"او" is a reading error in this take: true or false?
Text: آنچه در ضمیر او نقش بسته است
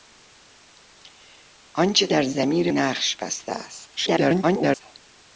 true